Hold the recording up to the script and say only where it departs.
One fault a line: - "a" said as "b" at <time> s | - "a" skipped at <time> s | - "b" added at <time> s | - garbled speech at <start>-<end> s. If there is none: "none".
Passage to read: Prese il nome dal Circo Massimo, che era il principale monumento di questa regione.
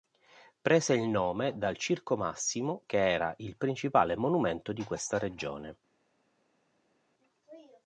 none